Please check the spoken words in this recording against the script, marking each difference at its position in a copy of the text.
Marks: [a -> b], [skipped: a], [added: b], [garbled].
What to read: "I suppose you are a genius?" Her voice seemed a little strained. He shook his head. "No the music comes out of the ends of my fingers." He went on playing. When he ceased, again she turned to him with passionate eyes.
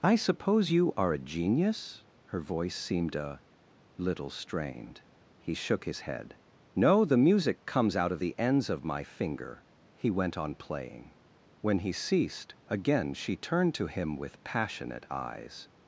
"I suppose you are a genius?" Her voice seemed a little strained. He shook his head. "No the music comes out of the ends of my [fingers." -> finger] He went on playing. When he ceased, again she turned to him with passionate eyes.